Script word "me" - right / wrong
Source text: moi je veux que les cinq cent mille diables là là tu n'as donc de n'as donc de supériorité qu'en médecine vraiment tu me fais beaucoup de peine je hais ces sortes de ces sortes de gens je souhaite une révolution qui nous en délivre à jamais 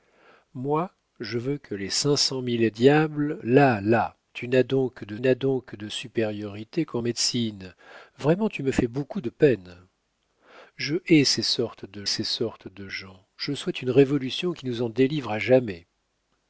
right